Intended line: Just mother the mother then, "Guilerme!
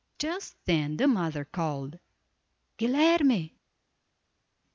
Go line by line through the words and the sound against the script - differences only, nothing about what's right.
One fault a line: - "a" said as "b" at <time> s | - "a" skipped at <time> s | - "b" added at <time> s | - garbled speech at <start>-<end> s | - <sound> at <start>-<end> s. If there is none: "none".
- "mother" said as "then" at 0.7 s
- "then" said as "called" at 1.4 s